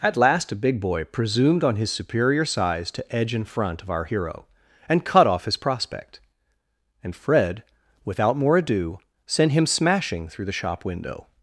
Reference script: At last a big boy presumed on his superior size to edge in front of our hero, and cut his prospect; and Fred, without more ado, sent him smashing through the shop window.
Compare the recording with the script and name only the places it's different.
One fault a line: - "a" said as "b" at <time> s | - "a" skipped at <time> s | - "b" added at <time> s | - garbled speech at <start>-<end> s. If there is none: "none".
- "off" added at 5.3 s